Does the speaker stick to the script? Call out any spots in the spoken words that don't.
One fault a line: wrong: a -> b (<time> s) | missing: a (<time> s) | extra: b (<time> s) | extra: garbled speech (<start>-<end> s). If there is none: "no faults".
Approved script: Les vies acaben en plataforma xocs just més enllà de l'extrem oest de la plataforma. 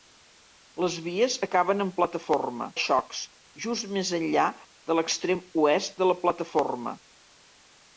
no faults